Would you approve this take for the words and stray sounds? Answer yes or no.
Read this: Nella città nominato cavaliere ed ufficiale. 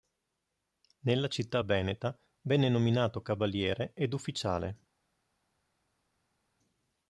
no